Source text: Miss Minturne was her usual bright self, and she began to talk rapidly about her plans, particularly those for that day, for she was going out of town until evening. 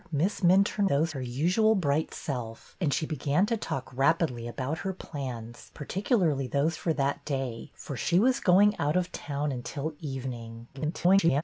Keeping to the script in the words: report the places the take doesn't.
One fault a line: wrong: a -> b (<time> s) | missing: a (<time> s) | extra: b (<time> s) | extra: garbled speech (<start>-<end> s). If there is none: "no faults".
wrong: was -> those (0.8 s)
extra: garbled speech (10.7-11.4 s)